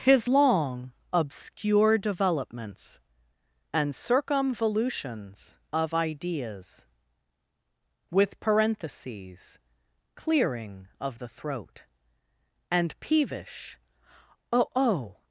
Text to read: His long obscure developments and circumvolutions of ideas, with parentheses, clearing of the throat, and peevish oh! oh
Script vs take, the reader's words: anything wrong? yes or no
no